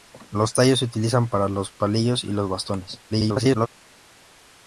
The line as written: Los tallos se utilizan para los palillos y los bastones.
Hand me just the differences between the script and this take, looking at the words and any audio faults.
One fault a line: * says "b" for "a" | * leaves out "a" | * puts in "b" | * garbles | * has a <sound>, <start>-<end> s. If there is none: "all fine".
* garbles